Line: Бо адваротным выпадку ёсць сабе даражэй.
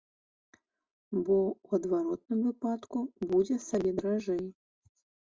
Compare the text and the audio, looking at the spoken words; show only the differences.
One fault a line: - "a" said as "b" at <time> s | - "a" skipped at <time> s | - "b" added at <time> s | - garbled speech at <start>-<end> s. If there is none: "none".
- "ў" added at 1.5 s
- "ёсць" said as "будзе" at 3.3 s